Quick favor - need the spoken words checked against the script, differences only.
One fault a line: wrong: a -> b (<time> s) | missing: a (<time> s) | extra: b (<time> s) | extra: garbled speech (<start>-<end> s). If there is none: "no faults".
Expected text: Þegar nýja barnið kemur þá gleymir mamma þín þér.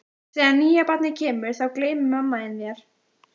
no faults